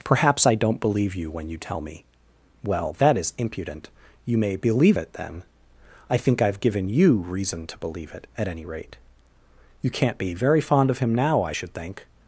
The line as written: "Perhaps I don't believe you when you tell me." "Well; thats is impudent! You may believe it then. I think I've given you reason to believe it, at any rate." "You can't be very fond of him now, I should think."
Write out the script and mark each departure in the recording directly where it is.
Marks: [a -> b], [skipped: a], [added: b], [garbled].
"Perhaps I don't believe you when you tell me." "Well; [thats -> that] is impudent! You may believe it then. I think I've given you reason to believe it, at any rate." "You can't be very fond of him now, I should think."